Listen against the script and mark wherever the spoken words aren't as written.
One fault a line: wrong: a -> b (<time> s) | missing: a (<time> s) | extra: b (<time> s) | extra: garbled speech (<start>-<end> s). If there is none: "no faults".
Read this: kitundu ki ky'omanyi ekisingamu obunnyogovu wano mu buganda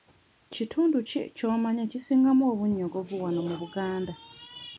no faults